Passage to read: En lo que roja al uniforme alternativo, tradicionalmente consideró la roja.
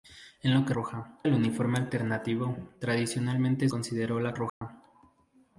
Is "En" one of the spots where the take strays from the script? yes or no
no